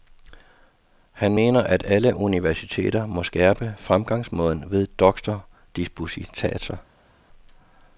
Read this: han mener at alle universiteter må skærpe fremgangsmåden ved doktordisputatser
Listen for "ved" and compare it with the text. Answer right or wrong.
right